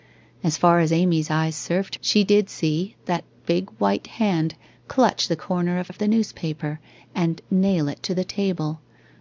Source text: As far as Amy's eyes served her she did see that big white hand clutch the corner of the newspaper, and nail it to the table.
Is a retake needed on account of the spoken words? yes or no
yes